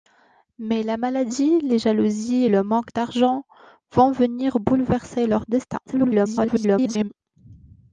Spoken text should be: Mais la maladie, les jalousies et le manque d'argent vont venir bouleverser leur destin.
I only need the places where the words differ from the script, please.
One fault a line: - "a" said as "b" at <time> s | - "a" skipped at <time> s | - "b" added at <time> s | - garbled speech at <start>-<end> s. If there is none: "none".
- garbled speech at 5.9-7.1 s